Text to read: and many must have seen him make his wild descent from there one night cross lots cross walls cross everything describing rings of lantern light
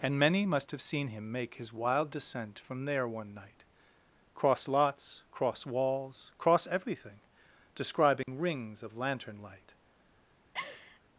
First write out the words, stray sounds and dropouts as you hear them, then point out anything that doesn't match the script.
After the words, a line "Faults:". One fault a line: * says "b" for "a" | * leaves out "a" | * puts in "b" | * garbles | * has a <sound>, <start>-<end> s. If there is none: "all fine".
and many must have seen him make his wild descent from there one night cross lots cross walls cross everything describing rings of lantern light
Faults:
* has a dropout, 8.2-8.3 s
* has a laugh, 10.5-11.0 s